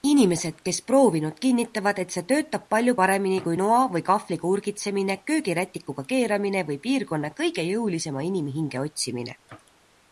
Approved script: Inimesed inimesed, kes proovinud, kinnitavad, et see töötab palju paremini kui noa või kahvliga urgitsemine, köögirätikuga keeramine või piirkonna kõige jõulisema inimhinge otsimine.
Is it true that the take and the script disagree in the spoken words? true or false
true